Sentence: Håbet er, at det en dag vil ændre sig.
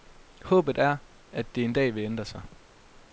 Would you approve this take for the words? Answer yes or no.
yes